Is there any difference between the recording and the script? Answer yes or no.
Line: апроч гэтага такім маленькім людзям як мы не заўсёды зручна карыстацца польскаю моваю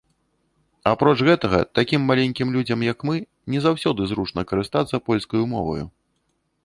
no